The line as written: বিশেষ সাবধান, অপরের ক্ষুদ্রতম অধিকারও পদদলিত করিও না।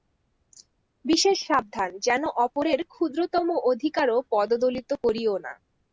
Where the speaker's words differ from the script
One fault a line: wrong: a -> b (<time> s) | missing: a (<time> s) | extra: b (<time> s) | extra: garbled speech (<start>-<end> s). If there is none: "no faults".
extra: যেন (2.0 s)